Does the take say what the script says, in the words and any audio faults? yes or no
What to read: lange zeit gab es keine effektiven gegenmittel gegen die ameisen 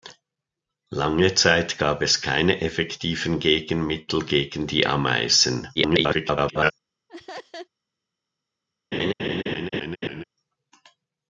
no